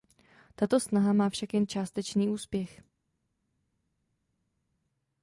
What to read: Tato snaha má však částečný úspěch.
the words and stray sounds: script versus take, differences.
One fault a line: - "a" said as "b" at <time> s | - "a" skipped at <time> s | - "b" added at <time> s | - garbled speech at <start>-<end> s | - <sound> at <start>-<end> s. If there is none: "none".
- "jen" added at 1.5 s